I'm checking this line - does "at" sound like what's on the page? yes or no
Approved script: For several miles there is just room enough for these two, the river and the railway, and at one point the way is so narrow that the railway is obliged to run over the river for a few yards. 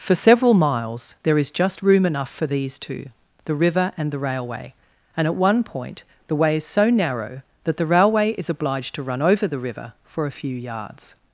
yes